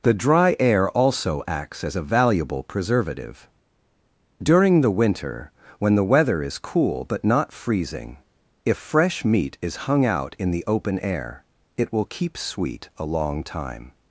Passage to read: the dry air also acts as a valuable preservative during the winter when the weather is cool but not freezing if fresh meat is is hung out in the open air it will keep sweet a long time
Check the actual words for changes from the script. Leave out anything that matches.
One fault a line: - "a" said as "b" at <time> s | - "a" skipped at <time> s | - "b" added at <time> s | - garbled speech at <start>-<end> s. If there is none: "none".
- "is" skipped at 9.9 s